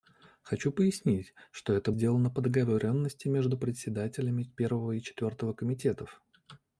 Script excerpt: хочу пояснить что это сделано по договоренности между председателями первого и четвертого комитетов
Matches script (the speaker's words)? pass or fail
pass